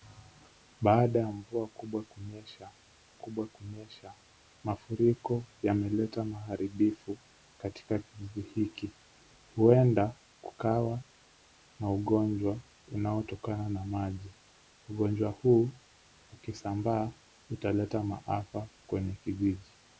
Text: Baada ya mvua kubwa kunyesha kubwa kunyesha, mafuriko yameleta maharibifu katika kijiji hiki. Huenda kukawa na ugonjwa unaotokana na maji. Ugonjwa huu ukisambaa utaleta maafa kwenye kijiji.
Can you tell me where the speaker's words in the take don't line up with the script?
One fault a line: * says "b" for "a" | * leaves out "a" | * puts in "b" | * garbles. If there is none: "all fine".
all fine